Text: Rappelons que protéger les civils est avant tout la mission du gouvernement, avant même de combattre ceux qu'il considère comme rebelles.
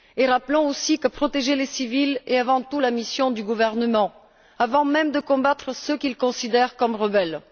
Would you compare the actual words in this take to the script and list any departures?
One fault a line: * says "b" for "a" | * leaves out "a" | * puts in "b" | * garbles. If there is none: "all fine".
* puts in "aussi"